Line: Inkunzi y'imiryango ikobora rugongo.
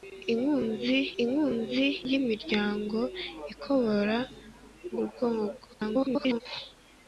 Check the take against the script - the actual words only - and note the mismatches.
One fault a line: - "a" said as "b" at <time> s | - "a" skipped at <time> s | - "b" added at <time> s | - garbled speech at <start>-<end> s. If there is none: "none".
- "inkunzi" added at 1.2 s
- garbled speech at 5.7-6.4 s